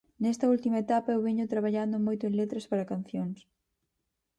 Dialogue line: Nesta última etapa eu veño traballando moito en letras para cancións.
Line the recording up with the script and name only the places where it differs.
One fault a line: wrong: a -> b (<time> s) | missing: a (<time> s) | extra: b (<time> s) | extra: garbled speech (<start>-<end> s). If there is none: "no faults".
no faults